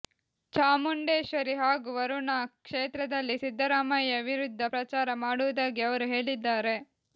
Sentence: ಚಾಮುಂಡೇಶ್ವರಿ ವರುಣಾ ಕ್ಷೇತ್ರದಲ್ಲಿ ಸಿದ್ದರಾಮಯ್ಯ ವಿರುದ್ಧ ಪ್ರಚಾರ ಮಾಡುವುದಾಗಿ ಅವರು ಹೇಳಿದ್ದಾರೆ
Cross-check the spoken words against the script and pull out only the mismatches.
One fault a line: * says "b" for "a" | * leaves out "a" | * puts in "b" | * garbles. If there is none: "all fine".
* puts in "ಹಾಗೂ"